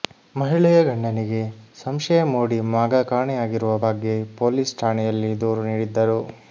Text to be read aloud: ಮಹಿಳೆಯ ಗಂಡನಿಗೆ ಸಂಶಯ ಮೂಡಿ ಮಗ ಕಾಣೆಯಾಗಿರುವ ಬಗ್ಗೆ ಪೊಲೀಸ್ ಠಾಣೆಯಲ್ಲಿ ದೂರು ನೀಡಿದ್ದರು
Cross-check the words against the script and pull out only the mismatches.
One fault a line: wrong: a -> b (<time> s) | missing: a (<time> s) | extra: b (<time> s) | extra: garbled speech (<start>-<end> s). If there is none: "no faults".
no faults